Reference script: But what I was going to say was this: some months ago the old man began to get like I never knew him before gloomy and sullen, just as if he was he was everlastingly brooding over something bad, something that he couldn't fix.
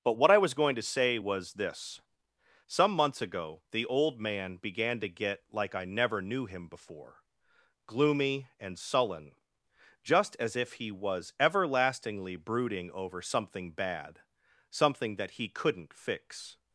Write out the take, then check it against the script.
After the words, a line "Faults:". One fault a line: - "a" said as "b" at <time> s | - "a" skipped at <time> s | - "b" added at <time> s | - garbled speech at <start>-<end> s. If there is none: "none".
But what I was going to say was this: some months ago the old man began to get like I never knew him before gloomy and sullen, just as if he was everlastingly brooding over something bad, something that he couldn't fix.
Faults:
- "he was" skipped at 11.3 s